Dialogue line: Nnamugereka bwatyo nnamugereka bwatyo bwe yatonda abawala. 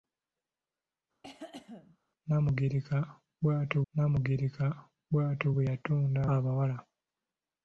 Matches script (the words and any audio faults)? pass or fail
fail